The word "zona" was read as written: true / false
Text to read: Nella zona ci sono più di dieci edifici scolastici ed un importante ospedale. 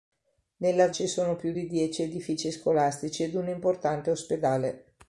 false